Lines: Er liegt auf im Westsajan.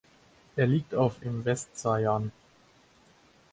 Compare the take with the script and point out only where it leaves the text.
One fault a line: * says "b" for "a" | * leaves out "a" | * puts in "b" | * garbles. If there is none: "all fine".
all fine